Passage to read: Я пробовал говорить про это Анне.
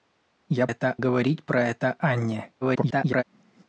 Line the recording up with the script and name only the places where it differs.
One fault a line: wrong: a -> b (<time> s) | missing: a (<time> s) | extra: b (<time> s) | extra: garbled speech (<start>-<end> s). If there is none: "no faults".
wrong: пробовал -> это (0.7 s)
extra: garbled speech (2.6-3.2 s)